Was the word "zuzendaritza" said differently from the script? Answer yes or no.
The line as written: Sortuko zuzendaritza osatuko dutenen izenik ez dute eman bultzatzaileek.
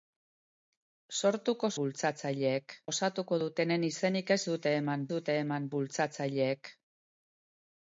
yes